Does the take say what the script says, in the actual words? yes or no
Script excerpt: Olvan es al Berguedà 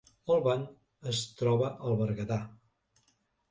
no